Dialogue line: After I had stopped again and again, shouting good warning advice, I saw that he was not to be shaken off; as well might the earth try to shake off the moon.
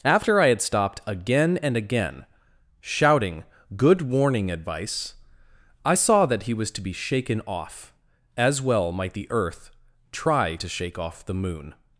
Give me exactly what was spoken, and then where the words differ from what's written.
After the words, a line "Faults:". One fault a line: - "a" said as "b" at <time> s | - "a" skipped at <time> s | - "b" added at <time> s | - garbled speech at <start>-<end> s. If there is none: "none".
After I had stopped again and again, shouting good warning advice, I saw that he was to be shaken off; as well might the earth try to shake off the moon.
Faults:
- "not" skipped at 6.7 s